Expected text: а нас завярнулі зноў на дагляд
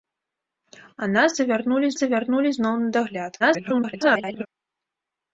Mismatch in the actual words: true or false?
true